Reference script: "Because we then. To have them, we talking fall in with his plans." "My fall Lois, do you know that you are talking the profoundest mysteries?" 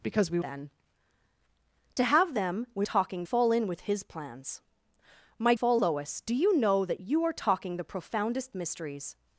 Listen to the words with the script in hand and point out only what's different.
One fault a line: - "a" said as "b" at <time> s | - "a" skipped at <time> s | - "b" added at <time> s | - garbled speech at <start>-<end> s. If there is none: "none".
none